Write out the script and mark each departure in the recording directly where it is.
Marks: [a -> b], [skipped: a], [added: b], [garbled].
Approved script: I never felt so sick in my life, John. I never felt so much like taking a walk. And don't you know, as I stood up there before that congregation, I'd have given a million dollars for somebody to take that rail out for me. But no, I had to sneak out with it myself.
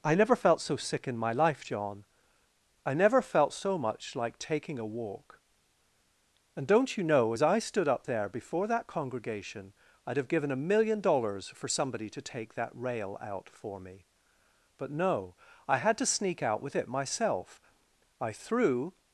I never felt so sick in my life, John. I never felt so much like taking a walk. And don't you know, as I stood up there before that congregation, I'd have given a million dollars for somebody to take that rail out for me. But no, I had to sneak out with it myself. [added: I threw]